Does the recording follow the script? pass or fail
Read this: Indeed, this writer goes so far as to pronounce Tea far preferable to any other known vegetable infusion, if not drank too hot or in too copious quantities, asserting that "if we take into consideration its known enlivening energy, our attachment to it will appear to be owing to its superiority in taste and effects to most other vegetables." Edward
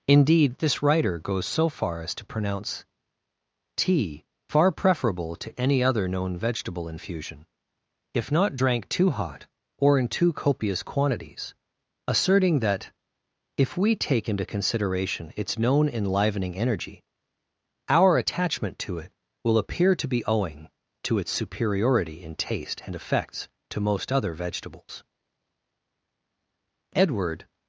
pass